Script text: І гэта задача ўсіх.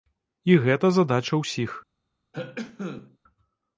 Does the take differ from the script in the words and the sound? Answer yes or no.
yes